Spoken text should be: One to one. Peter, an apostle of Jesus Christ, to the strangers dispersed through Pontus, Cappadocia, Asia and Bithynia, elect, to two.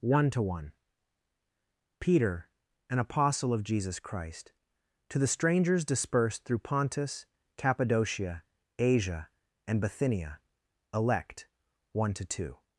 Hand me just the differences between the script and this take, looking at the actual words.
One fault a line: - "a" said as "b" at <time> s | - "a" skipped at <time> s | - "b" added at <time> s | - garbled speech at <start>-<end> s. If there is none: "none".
- "one" added at 11.9 s